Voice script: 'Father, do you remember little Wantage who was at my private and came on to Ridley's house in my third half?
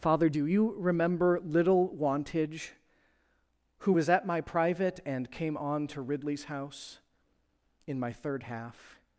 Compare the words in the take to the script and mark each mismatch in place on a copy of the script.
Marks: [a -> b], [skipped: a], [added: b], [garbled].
'Father, do you remember little Wantage who was at my private and came on to Ridley's house in my third half?